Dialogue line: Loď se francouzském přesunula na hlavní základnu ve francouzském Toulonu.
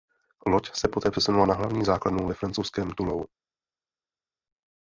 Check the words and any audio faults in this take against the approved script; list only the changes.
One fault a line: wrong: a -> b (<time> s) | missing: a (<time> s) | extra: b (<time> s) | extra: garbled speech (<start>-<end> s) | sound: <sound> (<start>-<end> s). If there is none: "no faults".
wrong: francouzském -> poté (0.9 s)